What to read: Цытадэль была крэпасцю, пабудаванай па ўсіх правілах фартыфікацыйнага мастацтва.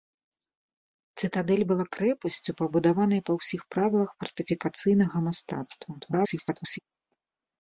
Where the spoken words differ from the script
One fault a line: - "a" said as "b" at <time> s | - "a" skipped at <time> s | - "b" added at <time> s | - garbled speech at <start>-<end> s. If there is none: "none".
- garbled speech at 6.0-6.8 s